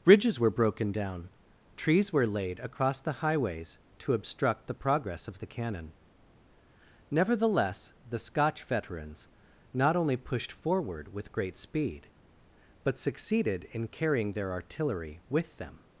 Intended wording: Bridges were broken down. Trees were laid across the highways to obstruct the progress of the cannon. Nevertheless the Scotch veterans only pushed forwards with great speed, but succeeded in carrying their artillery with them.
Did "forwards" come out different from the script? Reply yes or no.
yes